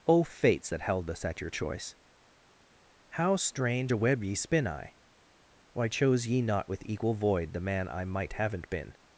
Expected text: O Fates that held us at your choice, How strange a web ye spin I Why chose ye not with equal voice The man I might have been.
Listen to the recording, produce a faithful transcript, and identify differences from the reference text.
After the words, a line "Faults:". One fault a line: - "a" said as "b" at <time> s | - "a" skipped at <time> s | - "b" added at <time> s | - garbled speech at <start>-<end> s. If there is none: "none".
O Fates that held us at your choice, How strange a web ye spin I Why chose ye not with equal void The man I might haven't been.
Faults:
- "voice" said as "void" at 7.1 s
- "have" said as "haven't" at 8.3 s